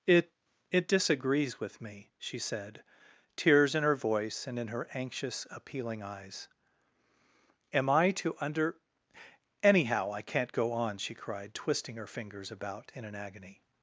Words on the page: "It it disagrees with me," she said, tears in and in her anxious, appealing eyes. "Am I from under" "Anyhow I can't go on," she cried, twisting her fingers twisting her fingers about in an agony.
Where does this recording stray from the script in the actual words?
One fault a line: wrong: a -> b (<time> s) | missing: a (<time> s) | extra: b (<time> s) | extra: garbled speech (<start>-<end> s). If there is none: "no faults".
extra: her voice (3.8 s)
wrong: from -> to (8.1 s)
missing: twisting her fingers (12.5 s)